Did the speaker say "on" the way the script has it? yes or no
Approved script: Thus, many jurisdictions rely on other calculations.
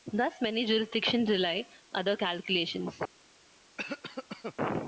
no